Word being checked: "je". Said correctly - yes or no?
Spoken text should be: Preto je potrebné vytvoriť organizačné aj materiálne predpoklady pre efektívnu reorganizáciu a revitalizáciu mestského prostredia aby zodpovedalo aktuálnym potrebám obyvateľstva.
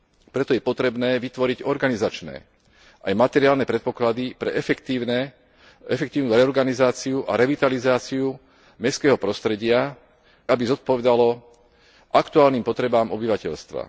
yes